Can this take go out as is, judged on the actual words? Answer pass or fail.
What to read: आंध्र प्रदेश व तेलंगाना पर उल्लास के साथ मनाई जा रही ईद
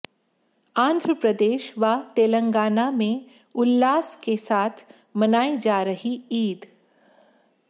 fail